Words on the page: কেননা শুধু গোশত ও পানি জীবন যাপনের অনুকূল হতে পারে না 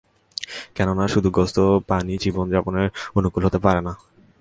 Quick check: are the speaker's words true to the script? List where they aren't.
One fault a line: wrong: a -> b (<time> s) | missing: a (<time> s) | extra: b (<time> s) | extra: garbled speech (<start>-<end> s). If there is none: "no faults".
no faults